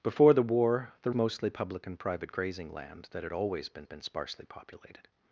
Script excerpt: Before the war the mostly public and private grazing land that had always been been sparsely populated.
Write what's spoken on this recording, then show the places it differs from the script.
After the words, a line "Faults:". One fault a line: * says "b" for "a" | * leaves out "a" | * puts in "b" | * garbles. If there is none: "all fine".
Before the war the mostly public and private grazing land that had always been been sparsely populated.
Faults:
all fine